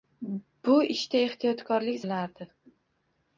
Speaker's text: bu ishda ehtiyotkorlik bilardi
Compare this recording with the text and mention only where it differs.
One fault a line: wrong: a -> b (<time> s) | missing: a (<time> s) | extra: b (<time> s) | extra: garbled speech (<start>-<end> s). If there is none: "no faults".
no faults